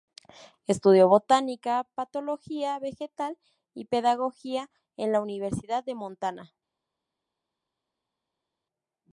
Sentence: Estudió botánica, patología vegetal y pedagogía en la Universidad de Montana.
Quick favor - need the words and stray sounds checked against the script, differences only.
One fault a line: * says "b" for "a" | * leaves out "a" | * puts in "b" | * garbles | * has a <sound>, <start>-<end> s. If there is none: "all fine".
all fine